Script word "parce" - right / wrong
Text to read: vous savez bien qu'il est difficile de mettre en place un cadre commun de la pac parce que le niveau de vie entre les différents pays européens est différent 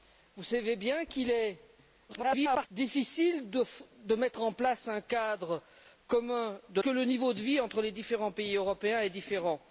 wrong